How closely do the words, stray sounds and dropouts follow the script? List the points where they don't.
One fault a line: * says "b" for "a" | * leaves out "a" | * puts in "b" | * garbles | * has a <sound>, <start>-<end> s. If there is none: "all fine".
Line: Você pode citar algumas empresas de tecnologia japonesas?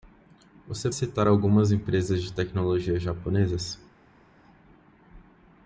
* leaves out "pode"